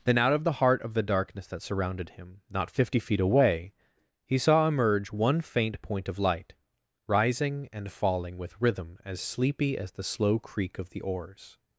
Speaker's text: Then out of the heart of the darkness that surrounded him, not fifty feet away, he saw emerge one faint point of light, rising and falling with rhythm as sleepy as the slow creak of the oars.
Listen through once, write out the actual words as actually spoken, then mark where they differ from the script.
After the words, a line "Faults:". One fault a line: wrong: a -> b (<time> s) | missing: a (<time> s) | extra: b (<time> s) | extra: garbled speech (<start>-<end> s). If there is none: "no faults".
Then out of the heart of the darkness that surrounded him, not fifty feet away, he saw emerge one faint point of light, rising and falling with rhythm as sleepy as the slow creak of the oars.
Faults:
no faults